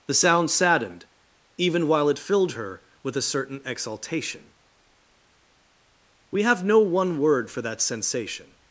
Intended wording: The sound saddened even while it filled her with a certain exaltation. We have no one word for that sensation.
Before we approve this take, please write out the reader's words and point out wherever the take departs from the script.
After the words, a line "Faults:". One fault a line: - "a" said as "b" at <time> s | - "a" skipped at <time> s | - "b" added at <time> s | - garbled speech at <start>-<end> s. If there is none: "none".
The sound saddened even while it filled her with a certain exaltation. We have no one word for that sensation.
Faults:
none